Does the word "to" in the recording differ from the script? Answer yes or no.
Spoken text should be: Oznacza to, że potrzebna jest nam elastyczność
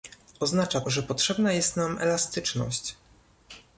yes